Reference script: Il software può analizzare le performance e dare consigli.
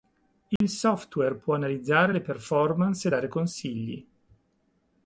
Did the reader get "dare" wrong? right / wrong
right